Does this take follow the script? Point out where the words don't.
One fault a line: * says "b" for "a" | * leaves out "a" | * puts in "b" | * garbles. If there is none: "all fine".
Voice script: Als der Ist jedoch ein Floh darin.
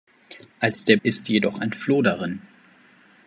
all fine